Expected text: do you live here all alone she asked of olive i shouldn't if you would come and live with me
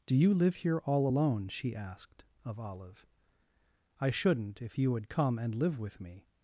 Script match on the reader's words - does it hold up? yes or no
yes